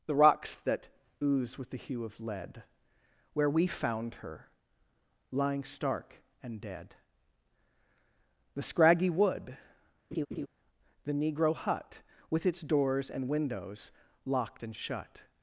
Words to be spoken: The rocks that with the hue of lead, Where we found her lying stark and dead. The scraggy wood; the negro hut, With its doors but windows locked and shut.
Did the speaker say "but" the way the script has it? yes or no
no